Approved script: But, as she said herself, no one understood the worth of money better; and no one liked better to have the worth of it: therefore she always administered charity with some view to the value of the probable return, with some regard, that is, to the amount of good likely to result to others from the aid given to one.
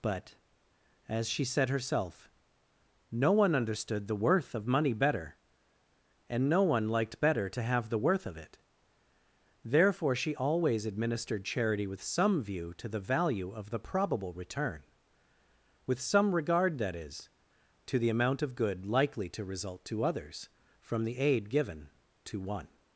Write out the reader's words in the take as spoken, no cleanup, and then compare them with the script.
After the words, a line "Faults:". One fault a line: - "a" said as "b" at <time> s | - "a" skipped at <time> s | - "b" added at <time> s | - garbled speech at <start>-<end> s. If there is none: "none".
But, as she said herself, no one understood the worth of money better; and no one liked better to have the worth of it: therefore she always administered charity with some view to the value of the probable return, with some regard, that is, to the amount of good likely to result to others from the aid given to one.
Faults:
none